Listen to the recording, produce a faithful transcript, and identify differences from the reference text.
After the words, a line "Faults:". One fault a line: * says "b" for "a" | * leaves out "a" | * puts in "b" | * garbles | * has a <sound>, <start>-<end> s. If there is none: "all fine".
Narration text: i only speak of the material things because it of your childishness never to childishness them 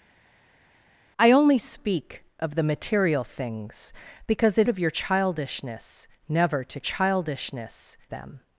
i only speak of the material things because it of your childishness never to childishness them
Faults:
all fine